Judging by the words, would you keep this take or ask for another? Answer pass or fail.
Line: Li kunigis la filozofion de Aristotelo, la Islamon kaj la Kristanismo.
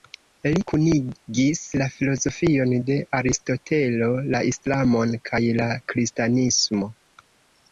pass